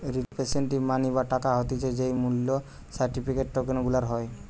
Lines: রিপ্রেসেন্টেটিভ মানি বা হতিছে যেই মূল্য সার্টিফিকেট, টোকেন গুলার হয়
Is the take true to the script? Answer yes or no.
no